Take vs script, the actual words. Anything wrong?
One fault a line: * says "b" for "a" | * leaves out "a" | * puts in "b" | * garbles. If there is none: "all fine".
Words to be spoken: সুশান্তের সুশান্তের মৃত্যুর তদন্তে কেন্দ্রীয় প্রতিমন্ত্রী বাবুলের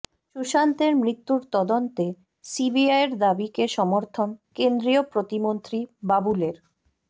* leaves out "সুশান্তের"
* puts in "সিবিআইয়ের দাবিকে সমর্থন"